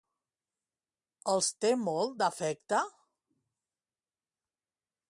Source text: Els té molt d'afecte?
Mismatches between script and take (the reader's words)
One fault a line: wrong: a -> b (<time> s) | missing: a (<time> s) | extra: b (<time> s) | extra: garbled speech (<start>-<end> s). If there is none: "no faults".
no faults